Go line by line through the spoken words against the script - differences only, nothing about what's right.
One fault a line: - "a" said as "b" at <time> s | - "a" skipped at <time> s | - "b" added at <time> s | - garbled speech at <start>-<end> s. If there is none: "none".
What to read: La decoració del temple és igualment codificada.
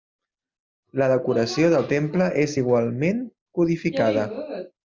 none